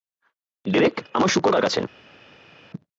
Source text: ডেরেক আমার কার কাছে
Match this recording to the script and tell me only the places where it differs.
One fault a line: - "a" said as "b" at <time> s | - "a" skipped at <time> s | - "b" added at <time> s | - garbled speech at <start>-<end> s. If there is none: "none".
- "শূকর" added at 1.3 s